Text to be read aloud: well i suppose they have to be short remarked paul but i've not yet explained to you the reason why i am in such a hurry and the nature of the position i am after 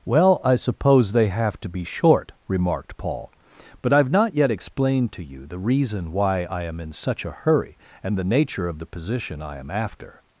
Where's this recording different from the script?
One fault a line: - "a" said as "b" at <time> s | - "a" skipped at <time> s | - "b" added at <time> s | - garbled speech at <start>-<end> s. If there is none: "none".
none